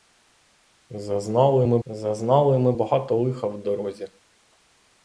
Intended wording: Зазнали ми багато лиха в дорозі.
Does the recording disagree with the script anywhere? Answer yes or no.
yes